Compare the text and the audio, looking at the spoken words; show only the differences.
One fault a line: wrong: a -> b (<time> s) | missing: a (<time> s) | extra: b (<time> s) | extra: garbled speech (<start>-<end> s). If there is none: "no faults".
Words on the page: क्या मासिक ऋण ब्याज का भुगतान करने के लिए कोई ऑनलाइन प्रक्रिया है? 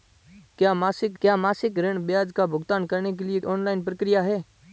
extra: क्या मासिक (1.2 s)
missing: कोई (3.4 s)